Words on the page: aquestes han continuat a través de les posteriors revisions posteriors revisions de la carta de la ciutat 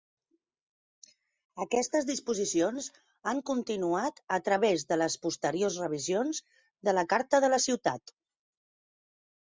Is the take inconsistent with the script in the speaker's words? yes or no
yes